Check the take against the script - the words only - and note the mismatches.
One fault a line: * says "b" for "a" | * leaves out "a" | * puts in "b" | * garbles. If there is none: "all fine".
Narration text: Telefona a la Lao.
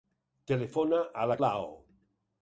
all fine